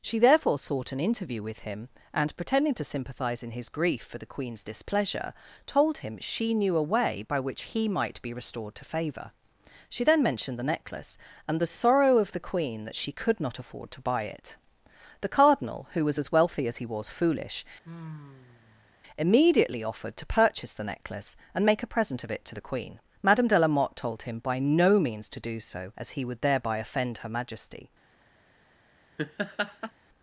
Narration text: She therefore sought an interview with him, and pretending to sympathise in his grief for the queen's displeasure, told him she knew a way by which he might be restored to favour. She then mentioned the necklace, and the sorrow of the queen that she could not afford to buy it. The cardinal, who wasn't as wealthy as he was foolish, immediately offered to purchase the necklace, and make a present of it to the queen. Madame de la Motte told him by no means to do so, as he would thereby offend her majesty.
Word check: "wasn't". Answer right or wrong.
wrong